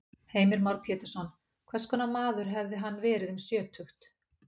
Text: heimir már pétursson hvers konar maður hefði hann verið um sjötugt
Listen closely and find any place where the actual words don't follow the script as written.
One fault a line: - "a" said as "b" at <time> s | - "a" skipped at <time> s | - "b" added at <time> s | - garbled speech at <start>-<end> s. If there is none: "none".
none